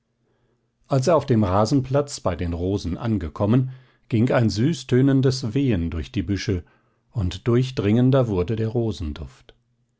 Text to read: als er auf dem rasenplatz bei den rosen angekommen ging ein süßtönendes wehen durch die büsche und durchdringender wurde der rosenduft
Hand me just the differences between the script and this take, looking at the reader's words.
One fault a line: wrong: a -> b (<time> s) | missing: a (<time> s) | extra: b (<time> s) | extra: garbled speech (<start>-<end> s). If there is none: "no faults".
no faults